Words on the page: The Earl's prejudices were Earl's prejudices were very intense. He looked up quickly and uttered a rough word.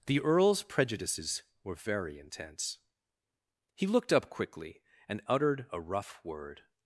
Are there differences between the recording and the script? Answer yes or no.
yes